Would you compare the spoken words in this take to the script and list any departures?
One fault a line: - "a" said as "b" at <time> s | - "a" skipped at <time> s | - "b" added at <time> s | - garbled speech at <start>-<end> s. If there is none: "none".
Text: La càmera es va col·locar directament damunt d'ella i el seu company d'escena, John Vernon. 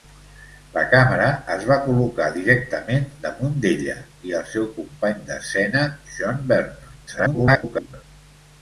- garbled speech at 7.1-8.0 s